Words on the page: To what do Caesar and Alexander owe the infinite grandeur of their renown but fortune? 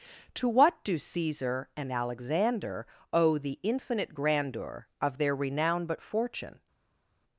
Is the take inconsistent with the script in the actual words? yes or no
no